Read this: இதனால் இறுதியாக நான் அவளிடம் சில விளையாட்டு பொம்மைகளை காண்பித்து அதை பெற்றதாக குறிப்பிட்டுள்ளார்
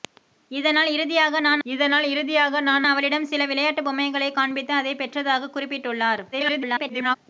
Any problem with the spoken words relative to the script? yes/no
yes